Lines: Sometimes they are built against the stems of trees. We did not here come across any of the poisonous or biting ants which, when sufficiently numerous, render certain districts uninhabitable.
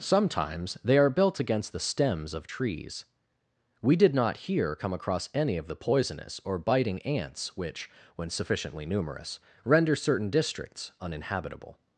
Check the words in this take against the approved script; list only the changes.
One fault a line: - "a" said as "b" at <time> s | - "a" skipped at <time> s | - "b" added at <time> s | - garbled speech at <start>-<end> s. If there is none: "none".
none